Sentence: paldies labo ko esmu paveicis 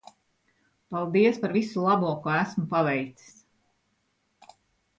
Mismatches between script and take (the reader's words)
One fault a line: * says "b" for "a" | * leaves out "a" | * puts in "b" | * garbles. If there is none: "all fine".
* puts in "par visu"